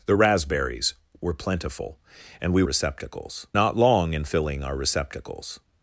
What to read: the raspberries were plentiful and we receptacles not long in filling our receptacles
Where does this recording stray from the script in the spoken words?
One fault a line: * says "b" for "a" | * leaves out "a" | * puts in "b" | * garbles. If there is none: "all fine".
all fine